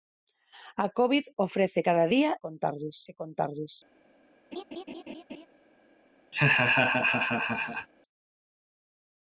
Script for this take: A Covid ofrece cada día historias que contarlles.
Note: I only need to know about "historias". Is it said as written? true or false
false